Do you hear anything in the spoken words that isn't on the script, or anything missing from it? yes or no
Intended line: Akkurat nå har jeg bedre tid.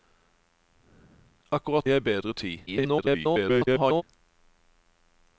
yes